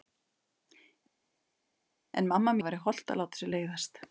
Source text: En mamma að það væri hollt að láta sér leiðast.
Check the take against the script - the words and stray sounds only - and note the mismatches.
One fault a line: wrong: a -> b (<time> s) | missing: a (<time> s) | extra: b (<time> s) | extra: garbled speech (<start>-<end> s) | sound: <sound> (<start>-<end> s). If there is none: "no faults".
no faults